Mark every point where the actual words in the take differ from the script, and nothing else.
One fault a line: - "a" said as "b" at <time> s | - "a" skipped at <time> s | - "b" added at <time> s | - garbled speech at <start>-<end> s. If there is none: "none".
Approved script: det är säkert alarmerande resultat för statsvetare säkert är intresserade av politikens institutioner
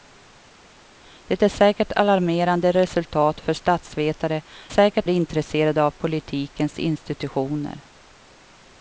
none